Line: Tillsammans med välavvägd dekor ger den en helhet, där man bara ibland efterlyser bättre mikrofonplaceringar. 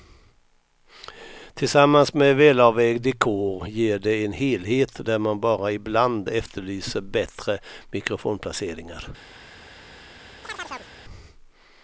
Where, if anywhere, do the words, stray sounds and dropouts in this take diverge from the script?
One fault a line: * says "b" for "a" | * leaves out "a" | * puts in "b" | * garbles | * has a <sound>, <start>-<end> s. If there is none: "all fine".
* says "det" for "den"
* has a chirp, 10.4-10.9 s